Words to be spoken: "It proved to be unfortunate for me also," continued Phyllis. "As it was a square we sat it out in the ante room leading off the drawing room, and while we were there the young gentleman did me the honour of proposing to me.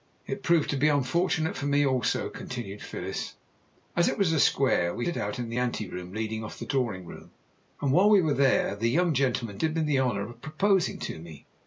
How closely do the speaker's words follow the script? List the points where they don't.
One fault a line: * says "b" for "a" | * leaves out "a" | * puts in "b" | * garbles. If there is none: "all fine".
* leaves out "sat"